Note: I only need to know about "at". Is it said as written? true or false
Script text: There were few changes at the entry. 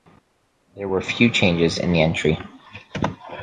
false